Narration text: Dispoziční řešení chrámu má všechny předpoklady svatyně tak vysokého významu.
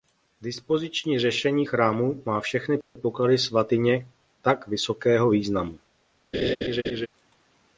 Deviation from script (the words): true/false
false